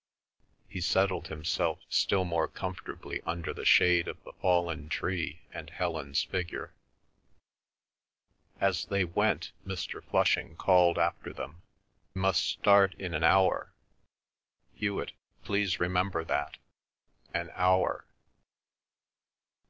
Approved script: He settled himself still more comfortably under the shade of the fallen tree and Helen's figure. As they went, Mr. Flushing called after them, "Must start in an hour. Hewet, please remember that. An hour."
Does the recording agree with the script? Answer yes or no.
yes